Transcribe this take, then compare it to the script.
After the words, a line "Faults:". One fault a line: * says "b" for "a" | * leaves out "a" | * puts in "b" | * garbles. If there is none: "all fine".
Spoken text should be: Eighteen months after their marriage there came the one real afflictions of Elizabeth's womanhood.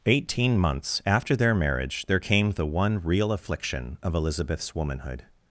Eighteen months after their marriage there came the one real affliction of Elizabeth's womanhood.
Faults:
* says "affliction" for "afflictions"